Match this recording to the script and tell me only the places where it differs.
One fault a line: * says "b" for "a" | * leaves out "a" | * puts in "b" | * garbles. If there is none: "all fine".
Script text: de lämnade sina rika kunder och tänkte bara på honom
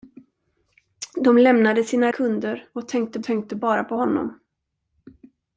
* leaves out "rika"
* puts in "tänkte"